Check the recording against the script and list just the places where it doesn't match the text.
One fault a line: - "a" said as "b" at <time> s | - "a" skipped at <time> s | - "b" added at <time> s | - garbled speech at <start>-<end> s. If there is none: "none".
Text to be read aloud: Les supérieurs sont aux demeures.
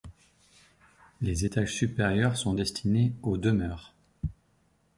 - "étages" added at 1.4 s
- "destinés" added at 2.5 s